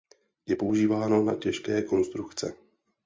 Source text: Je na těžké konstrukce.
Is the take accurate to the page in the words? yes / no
no